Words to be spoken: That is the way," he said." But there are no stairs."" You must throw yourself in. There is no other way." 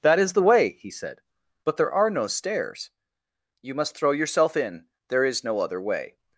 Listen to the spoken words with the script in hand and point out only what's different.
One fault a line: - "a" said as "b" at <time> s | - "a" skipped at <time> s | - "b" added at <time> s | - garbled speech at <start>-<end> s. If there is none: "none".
none